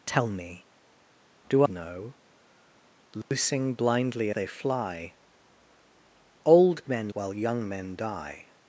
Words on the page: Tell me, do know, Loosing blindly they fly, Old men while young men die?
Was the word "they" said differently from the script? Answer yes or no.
no